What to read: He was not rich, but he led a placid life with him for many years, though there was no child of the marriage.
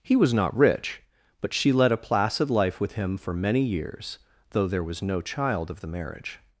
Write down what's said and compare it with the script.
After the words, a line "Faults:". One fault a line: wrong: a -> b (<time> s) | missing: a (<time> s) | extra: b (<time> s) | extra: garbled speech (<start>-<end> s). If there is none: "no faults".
He was not rich, but she led a placid life with him for many years, though there was no child of the marriage.
Faults:
wrong: he -> she (1.5 s)